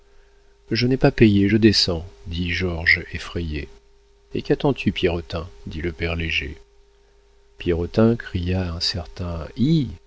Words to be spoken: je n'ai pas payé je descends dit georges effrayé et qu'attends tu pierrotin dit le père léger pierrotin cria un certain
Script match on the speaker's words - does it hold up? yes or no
yes